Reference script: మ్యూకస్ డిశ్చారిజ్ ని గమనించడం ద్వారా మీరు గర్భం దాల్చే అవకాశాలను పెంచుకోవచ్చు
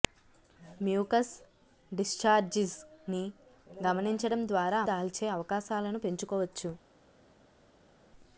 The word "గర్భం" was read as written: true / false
false